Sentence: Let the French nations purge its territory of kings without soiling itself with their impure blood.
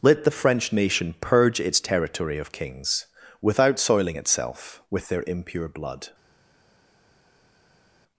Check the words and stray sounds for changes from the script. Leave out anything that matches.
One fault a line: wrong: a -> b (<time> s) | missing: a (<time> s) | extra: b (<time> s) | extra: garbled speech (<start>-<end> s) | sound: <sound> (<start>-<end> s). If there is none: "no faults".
wrong: nations -> nation (0.7 s)